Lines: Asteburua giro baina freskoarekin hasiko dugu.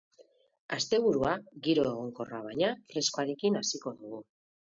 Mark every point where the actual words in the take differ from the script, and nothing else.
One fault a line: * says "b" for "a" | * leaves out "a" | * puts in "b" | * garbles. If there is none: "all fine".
* puts in "egonkorra"